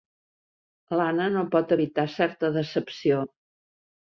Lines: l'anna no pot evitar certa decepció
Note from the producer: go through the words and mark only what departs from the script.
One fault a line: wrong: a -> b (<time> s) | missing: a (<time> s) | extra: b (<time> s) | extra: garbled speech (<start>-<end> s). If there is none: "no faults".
no faults